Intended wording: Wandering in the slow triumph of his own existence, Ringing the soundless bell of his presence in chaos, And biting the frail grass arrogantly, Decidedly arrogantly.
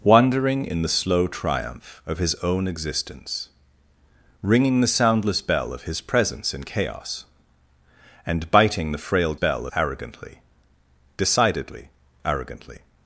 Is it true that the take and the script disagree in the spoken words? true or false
true